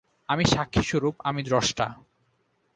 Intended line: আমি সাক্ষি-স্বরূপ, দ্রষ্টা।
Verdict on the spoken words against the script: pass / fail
fail